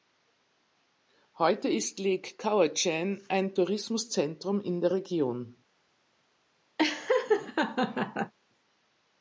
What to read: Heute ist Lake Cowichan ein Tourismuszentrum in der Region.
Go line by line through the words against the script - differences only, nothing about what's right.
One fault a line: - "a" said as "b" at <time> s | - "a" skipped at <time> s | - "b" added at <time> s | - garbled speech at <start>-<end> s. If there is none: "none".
none